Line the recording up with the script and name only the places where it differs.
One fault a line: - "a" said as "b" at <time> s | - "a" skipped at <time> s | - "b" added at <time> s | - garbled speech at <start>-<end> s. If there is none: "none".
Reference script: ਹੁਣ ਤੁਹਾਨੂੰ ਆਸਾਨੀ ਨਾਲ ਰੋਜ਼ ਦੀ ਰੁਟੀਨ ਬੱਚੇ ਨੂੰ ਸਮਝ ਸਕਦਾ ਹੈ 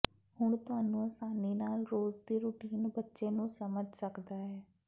none